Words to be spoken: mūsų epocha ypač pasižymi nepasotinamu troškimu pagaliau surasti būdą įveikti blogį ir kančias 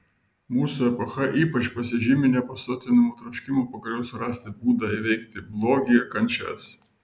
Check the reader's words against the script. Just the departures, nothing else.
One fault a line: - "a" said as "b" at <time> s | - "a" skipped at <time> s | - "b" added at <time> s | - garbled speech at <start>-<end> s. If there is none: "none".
none